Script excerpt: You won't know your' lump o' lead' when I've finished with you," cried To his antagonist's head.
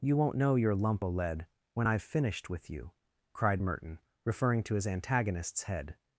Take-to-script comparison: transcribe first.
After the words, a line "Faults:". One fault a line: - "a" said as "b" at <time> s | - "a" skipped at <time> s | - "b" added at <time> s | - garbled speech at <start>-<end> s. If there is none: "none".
You won't know your' lump o' lead' when I've finished with you," cried Merton, referring to his antagonist's head.
Faults:
- "Merton referring" added at 3.6 s